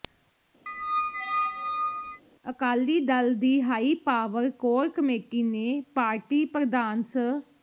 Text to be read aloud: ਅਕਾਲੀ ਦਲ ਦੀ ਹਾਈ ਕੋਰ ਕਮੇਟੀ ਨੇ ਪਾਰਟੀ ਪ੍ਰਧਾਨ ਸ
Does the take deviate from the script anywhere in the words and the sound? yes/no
yes